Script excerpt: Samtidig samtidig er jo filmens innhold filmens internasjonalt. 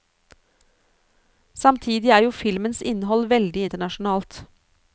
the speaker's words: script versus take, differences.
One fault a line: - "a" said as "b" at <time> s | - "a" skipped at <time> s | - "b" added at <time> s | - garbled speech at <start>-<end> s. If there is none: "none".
- "samtidig" skipped at 2.1 s
- "filmens" said as "veldig" at 3.3 s